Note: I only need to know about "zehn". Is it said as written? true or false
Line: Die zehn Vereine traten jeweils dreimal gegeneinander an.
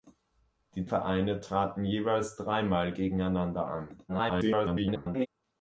false